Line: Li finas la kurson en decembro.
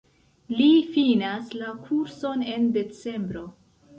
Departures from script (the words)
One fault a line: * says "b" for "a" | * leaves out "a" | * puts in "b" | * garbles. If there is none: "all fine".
all fine